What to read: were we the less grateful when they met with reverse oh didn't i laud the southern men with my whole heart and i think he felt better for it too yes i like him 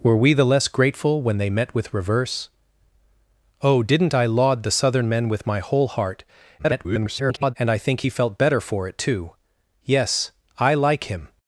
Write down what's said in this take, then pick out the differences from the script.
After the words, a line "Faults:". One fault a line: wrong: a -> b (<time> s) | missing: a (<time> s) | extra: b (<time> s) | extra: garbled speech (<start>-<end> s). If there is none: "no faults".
were we the less grateful when they met with reverse oh didn't i laud the southern men with my whole heart [garbled] and i think he felt better for it too yes i like him
Faults:
extra: garbled speech (6.6-7.5 s)